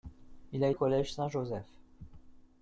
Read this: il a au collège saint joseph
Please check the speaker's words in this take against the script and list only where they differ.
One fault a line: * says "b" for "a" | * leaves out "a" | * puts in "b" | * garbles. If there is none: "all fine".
all fine